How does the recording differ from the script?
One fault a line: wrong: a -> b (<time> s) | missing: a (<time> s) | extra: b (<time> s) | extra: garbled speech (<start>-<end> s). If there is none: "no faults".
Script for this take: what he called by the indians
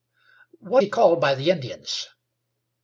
no faults